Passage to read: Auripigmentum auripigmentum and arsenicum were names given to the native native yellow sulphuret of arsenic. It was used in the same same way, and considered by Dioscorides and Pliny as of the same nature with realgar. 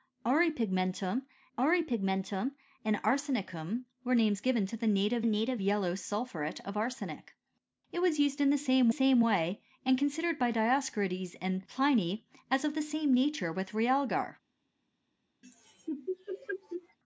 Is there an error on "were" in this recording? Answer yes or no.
no